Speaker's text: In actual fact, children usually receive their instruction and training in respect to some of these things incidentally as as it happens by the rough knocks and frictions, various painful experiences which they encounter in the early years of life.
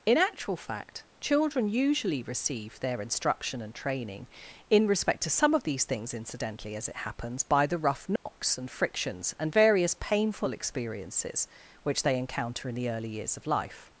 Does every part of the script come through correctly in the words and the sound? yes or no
no